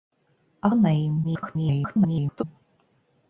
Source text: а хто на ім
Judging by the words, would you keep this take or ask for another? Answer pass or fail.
fail